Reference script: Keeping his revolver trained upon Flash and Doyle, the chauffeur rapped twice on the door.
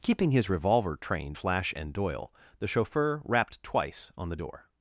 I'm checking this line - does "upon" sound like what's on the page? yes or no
no